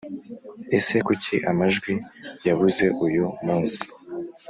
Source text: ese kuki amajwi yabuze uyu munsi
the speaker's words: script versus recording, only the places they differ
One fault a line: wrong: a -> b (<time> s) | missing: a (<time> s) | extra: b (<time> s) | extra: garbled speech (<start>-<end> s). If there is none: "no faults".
no faults